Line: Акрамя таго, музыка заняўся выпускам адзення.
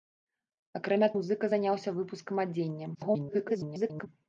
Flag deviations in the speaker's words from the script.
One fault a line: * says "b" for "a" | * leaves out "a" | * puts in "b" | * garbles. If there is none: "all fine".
* leaves out "таго"
* garbles